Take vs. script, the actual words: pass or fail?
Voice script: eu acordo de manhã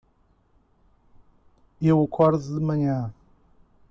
pass